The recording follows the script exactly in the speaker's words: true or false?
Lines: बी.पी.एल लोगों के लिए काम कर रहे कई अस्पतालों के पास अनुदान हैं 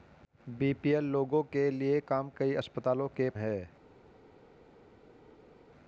false